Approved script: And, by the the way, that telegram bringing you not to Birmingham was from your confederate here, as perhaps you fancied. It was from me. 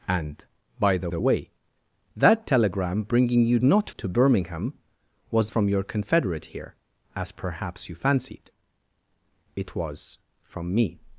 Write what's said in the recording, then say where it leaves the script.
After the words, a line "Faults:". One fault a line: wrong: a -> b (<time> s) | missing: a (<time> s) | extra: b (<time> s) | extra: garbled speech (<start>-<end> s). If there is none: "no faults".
And, by the the way, that telegram bringing you not to Birmingham was from your confederate here, as perhaps you fancied. It was from me.
Faults:
no faults